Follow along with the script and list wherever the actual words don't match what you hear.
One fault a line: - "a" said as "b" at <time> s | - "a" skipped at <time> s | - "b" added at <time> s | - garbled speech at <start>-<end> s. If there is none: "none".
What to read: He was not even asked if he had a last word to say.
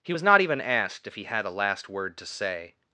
none